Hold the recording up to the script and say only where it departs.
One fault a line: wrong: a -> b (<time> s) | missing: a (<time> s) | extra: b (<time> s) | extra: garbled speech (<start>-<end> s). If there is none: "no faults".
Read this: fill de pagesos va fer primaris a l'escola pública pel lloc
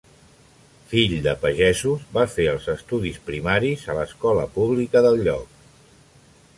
extra: els estudis (2.5 s)
wrong: pel -> del (5.1 s)